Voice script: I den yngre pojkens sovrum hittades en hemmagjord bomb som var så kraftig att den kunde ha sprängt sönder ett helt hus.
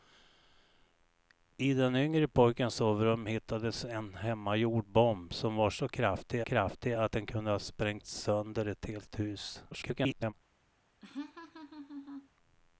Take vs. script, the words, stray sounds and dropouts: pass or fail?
fail